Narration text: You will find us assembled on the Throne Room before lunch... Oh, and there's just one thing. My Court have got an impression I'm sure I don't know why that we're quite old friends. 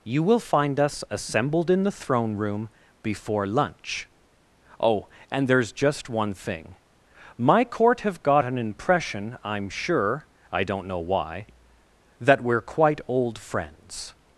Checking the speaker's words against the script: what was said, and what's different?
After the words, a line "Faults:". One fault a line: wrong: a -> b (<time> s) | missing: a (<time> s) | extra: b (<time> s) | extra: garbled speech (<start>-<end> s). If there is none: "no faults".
You will find us assembled in the Throne Room before lunch... Oh, and there's just one thing. My Court have got an impression I'm sure I don't know why that we're quite old friends.
Faults:
wrong: on -> in (1.7 s)